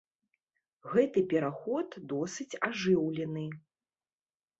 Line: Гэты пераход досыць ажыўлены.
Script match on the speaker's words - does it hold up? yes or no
yes